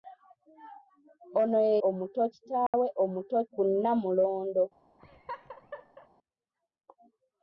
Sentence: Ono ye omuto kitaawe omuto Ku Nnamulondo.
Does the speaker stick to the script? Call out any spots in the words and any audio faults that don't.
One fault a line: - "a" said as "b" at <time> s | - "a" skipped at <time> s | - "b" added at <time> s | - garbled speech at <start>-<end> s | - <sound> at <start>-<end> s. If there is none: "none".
- dropout at 2.7-2.7 s
- laugh at 5.0-6.1 s